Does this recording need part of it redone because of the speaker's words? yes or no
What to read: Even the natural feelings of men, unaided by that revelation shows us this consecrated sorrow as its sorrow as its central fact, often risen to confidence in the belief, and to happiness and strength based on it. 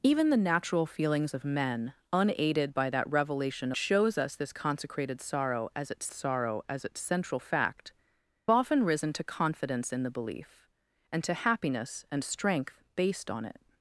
no